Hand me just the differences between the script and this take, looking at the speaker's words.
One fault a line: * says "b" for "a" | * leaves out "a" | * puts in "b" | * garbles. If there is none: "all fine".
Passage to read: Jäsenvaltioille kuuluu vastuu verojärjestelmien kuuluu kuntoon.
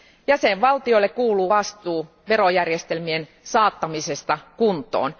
* says "saattamisesta" for "kuuluu"